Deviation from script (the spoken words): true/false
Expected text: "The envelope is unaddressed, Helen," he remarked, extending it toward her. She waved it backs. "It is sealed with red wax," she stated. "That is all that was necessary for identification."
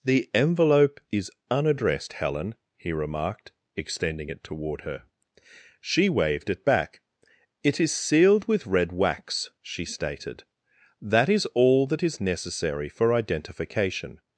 true